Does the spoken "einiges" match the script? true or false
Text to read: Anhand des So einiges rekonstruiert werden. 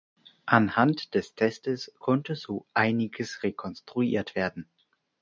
true